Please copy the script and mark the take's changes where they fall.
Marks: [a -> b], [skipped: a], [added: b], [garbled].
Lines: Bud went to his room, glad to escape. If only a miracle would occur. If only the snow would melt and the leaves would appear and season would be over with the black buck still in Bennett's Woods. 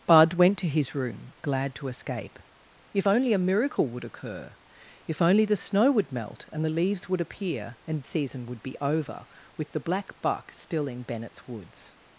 Bud went to his room, glad to escape. If only a miracle would occur. If only the snow would melt and the leaves would appear and season would be over with the black buck still in Bennett's Woods.